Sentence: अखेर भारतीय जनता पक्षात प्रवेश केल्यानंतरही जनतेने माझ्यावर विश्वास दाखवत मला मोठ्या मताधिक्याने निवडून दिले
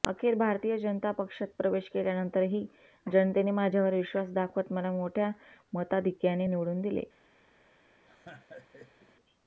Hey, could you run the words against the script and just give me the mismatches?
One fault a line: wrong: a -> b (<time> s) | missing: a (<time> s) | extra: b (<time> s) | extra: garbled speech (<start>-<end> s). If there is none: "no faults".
no faults